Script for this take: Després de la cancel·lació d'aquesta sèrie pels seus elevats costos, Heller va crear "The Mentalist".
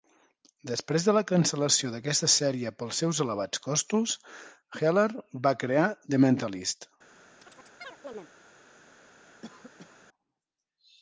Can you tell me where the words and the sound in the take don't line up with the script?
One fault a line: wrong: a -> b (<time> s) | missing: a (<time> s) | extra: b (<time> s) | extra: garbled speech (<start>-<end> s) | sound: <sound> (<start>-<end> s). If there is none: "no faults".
sound: chirp (7.4-8.3 s)
sound: cough (9.4-10.0 s)